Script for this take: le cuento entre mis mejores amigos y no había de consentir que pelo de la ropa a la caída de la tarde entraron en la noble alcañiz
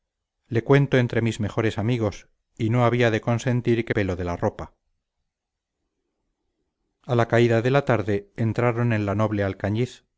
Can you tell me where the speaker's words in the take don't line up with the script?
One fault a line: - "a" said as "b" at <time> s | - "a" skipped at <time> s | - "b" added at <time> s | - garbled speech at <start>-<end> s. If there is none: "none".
none